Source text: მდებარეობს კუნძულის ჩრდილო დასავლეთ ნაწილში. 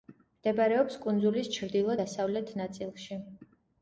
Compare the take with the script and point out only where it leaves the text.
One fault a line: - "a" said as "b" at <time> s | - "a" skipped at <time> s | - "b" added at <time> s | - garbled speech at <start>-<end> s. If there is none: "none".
none